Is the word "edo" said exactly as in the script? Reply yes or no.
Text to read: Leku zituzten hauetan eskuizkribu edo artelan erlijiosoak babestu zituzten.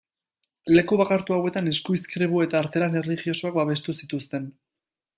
no